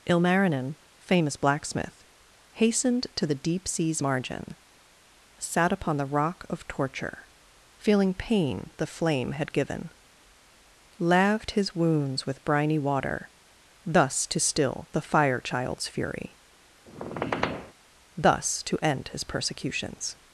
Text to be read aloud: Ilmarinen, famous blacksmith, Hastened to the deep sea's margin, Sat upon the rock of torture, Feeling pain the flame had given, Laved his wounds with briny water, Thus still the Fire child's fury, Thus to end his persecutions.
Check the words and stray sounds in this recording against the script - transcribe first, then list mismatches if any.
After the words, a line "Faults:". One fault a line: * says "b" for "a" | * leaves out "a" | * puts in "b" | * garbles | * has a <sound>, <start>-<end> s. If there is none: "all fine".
Ilmarinen, famous blacksmith, Hastened to the deep sea's margin, Sat upon the rock of torture, Feeling pain the flame had given, Laved his wounds with briny water, Thus to still the Fire child's fury, Thus to end his persecutions.
Faults:
* puts in "to"
* has a squeak, 16.9-17.7 s